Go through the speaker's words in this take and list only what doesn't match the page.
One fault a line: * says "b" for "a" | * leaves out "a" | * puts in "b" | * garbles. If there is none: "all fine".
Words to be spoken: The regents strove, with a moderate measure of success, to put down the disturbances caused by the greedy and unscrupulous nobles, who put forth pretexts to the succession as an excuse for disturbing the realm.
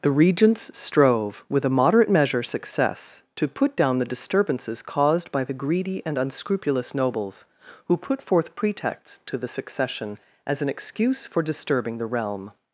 * leaves out "of"